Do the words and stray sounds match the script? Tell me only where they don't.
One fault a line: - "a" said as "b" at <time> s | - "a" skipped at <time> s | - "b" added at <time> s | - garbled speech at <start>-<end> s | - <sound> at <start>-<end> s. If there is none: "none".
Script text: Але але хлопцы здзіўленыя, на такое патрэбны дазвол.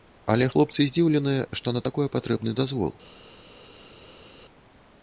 - "але" skipped at 0.5 s
- "што" added at 1.6 s